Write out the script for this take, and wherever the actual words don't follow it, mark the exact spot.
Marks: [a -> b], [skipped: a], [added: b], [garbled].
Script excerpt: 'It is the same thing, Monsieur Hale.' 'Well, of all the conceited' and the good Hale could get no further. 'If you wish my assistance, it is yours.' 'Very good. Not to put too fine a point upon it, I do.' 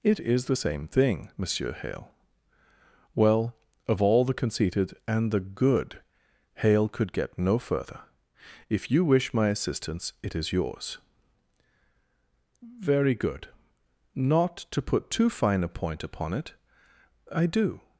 'It is the same thing, Monsieur Hale.' 'Well, of all the conceited' and the good Hale could get no further. 'If you wish my assistance, it is yours.' 'Very good. Not to put too fine a point upon it, I do.'